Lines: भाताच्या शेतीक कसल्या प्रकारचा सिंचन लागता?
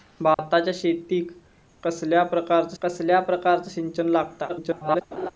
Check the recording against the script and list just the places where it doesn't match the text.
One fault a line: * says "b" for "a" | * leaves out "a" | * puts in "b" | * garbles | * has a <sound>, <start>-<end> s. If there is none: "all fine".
* has a dropout, 0.3-0.4 s
* puts in "कसल्या प्रकारचा"
* garbles
* has a laugh, 5.1-5.3 s